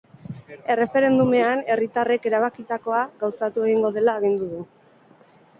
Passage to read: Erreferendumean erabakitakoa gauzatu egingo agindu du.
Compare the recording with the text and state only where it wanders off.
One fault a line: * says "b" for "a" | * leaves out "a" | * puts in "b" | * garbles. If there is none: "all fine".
* puts in "herritarrek"
* puts in "dela"